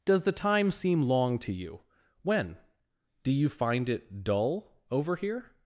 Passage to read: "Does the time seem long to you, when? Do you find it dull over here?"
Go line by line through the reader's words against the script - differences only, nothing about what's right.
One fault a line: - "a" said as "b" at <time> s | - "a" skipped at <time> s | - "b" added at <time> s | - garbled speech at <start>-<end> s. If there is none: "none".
none